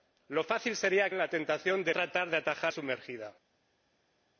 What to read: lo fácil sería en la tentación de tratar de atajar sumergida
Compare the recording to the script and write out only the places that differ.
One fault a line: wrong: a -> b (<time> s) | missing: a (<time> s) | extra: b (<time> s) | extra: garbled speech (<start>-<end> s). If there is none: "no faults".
no faults